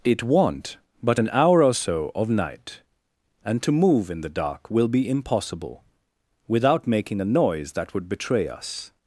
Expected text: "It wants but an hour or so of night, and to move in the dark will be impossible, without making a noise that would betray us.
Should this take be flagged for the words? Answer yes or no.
yes